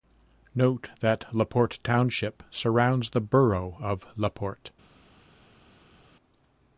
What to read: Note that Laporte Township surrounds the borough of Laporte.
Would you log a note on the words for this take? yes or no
no